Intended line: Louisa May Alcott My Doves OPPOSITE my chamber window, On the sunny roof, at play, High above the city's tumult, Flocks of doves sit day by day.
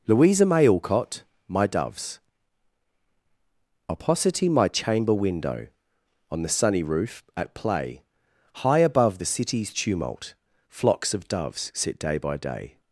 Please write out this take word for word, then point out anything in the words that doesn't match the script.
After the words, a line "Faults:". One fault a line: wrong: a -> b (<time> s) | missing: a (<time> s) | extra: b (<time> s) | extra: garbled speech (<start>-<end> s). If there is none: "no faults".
Louisa May Alcott My Doves OPPOSITE my chamber window, On the sunny roof, at play, High above the city's tumult, Flocks of doves sit day by day.
Faults:
no faults